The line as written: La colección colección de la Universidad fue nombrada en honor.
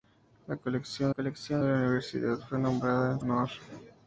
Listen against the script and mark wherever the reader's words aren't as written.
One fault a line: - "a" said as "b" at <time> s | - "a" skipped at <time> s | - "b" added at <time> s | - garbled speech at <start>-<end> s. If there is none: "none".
none